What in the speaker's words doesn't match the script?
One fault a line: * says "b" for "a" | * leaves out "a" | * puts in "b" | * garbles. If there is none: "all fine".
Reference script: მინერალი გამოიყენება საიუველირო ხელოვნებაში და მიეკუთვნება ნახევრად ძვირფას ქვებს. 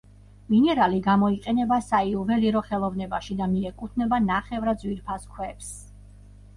all fine